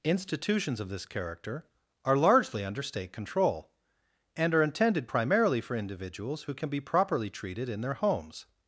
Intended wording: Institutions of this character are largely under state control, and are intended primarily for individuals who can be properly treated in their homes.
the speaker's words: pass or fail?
pass